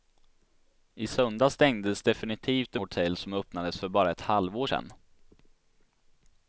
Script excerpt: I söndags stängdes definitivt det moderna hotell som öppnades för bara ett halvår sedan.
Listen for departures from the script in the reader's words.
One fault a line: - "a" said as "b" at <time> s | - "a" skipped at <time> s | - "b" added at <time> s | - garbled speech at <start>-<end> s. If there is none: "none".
- "moderna" skipped at 2.8 s